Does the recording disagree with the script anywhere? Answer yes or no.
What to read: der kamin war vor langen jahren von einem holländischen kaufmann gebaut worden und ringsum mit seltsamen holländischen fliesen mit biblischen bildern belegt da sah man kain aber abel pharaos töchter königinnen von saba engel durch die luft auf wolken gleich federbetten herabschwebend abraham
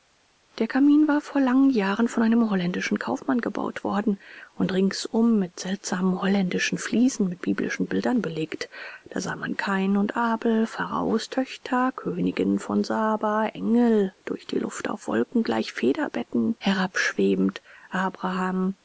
yes